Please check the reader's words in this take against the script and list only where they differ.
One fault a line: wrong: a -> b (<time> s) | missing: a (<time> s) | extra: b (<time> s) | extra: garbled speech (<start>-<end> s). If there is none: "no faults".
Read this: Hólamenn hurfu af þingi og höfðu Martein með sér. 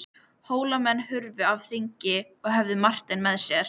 no faults